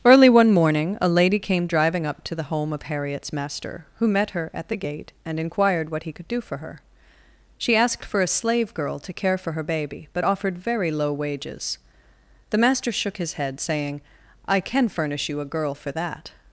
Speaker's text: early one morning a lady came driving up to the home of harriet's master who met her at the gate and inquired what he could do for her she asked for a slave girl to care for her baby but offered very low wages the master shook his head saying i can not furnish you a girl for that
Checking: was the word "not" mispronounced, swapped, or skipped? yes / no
yes